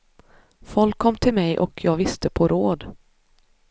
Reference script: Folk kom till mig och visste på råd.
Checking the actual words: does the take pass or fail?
fail